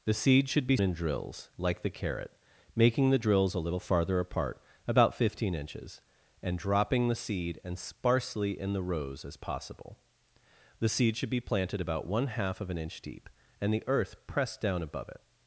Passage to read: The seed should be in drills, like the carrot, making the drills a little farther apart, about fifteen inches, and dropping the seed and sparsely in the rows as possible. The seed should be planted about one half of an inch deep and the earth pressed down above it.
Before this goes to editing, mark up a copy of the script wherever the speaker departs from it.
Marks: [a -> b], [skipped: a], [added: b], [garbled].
The seed should be in drills, like the carrot, making the drills a little farther apart, about fifteen inches, and dropping the seed and sparsely in the rows as possible. The seed should be planted about one half of an inch deep and the earth pressed down above it.